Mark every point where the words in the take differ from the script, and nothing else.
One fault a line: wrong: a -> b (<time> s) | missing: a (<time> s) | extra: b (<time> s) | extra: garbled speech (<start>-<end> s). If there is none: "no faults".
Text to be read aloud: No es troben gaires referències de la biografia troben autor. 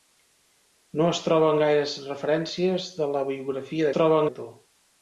no faults